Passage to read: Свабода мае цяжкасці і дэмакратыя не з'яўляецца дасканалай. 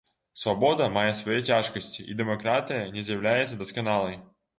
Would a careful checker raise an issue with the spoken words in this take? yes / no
yes